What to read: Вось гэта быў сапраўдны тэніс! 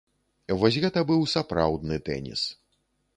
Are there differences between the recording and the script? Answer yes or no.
no